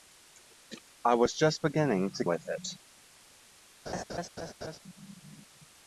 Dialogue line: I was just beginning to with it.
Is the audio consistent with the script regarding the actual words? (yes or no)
yes